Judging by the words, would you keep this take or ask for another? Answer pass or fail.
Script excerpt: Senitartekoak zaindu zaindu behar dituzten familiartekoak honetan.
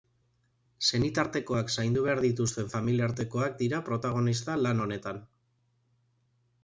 fail